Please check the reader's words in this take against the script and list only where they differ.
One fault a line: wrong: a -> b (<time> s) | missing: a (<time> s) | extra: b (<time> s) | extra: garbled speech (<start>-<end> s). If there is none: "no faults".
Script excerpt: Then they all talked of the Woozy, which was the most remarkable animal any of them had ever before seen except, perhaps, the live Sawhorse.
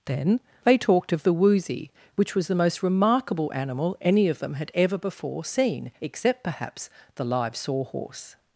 missing: all (0.8 s)